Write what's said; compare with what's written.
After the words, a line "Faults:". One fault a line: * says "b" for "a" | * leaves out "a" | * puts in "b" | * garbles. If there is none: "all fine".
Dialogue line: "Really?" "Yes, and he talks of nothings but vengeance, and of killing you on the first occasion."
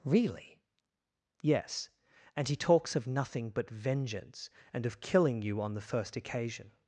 "Really?" "Yes, and he talks of nothing but vengeance, and of killing you on the first occasion."
Faults:
* says "nothing" for "nothings"